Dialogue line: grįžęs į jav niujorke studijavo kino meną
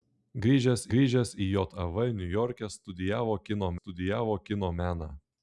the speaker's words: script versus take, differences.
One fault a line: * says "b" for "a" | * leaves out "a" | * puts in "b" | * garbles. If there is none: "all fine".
* puts in "grįžęs"
* puts in "studijavo kino"